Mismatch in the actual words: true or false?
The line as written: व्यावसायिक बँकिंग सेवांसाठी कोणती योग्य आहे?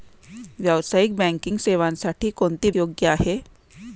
false